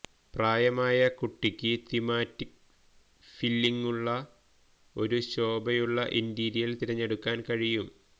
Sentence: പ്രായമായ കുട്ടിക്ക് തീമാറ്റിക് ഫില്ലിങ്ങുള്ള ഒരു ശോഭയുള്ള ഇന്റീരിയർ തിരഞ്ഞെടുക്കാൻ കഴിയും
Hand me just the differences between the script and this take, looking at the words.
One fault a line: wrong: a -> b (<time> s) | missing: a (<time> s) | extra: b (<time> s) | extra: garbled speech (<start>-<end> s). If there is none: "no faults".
no faults